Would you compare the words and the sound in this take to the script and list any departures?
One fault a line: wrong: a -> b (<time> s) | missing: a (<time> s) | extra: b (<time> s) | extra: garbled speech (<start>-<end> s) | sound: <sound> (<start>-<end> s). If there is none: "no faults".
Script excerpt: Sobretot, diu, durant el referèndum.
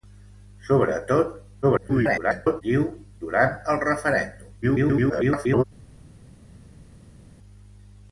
extra: garbled speech (1.6-2.6 s)
extra: garbled speech (4.6-5.6 s)